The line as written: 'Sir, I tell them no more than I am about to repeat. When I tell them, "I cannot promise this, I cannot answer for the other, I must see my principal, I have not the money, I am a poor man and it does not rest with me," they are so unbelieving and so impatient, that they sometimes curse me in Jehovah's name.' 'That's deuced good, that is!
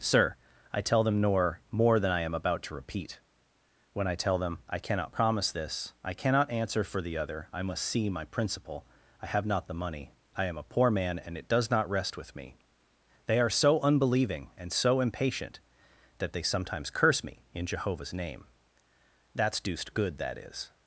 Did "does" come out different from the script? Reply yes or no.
no